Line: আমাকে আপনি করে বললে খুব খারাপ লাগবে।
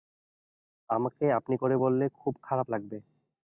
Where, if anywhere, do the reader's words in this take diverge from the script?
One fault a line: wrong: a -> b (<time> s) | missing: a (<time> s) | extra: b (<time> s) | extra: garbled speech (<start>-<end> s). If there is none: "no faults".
no faults